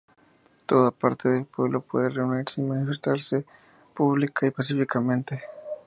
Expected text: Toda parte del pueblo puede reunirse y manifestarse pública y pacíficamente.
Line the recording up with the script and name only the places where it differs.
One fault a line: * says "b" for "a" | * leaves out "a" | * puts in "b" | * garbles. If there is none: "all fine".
all fine